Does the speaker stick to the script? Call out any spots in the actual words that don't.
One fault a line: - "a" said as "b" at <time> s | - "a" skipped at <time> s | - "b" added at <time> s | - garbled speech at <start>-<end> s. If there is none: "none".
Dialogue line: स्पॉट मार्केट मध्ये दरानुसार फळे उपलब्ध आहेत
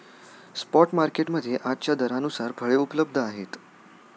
- "आजच्या" added at 1.6 s